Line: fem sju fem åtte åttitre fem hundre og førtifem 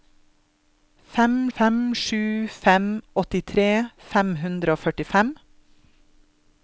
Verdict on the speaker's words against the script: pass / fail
fail